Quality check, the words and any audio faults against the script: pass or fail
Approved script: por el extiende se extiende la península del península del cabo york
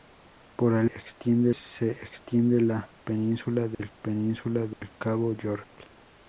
fail